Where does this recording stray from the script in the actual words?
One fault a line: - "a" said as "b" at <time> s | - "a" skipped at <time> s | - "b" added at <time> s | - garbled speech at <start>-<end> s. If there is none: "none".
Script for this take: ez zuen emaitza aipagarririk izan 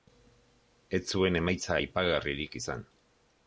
none